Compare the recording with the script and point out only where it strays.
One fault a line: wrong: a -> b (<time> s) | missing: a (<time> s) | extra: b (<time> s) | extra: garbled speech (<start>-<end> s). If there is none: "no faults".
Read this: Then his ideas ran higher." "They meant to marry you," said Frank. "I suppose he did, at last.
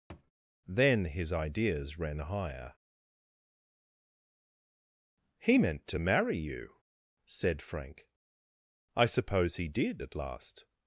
wrong: They -> He (5.4 s)